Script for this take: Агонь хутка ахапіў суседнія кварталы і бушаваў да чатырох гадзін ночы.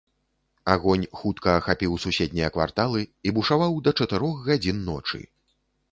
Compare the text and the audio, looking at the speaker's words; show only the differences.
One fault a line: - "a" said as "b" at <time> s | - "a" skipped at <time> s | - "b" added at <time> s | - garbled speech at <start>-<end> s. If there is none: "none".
none